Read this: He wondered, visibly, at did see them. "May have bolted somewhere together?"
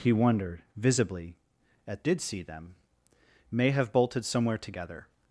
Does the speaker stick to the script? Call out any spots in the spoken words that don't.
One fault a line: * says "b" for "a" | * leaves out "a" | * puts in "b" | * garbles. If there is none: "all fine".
all fine